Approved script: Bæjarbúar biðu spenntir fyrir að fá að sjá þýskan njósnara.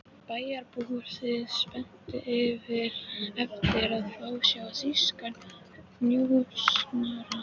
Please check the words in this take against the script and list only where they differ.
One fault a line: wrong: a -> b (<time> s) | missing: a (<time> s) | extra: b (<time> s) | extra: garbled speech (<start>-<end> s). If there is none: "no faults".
wrong: fyrir -> eftir (3.4 s)